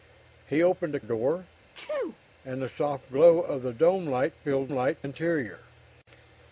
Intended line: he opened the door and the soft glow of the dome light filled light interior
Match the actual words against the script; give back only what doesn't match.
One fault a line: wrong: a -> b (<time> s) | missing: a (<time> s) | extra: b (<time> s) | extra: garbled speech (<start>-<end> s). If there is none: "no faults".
no faults